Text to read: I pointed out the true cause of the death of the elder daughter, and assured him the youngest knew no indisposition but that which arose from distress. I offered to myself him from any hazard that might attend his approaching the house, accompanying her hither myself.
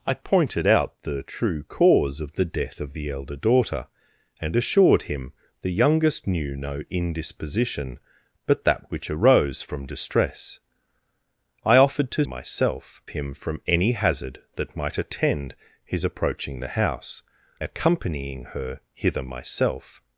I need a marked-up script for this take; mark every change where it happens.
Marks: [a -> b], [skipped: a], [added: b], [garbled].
I pointed out the true cause of the death of the elder daughter, and assured him the youngest knew no indisposition but that which arose from distress. I offered to myself him from any hazard that might attend his approaching the house, accompanying her hither myself.